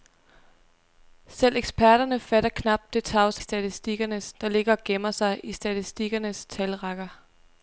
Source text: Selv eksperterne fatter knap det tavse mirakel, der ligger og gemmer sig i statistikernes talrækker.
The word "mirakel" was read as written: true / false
false